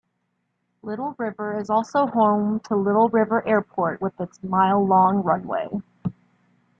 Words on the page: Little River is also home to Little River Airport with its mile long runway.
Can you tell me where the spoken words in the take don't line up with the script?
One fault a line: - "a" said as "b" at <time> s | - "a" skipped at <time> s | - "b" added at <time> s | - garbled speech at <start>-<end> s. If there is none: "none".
none